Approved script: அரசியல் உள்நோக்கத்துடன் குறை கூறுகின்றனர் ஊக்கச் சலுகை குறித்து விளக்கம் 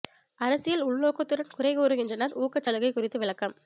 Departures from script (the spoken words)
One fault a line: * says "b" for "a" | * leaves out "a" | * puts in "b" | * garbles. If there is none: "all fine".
all fine